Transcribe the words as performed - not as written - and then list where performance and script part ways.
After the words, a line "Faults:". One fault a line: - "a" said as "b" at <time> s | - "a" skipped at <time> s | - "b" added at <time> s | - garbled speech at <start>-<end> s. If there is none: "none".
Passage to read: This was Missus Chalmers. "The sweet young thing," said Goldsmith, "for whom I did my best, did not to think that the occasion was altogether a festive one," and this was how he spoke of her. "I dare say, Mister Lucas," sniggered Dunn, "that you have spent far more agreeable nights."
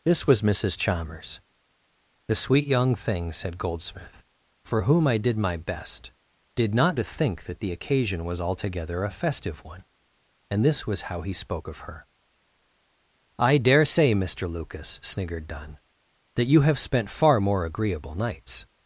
This was Missus Chalmers. "The sweet young thing," said Goldsmith, "for whom I did my best, did not to think that the occasion was altogether a festive one," and this was how he spoke of her. "I dare say, Mister Lucas," sniggered Dunn, "that you have spent far more agreeable nights."
Faults:
none